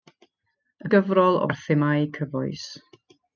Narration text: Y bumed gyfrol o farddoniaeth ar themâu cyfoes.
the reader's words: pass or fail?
fail